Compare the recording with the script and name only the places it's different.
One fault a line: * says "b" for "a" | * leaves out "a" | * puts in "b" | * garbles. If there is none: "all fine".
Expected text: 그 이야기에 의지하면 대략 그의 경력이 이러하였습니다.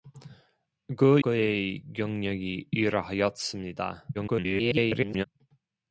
* leaves out "이야기에 의지하면 대략"
* garbles